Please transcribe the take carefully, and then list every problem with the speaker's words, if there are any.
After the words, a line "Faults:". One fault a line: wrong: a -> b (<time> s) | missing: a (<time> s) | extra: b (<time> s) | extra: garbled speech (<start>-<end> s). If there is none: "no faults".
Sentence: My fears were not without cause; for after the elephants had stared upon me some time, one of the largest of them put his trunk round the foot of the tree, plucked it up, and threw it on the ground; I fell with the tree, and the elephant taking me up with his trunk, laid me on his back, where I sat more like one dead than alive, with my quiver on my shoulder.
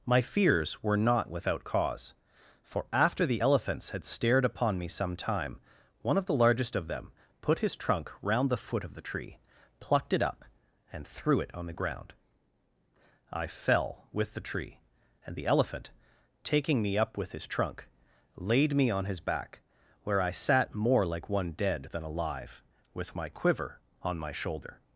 My fears were not without cause; for after the elephants had stared upon me some time, one of the largest of them put his trunk round the foot of the tree, plucked it up, and threw it on the ground; I fell with the tree, and the elephant taking me up with his trunk, laid me on his back, where I sat more like one dead than alive, with my quiver on my shoulder.
Faults:
no faults